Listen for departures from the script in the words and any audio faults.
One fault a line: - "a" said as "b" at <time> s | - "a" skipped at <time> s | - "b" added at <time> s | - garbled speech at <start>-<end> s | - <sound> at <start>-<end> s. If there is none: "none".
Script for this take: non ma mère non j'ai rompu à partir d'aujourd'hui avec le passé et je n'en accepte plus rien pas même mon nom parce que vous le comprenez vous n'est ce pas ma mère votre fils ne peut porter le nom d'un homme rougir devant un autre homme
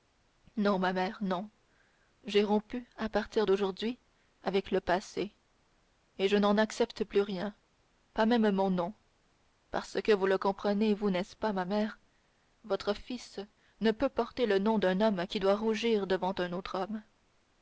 - "qui doit" added at 15.2 s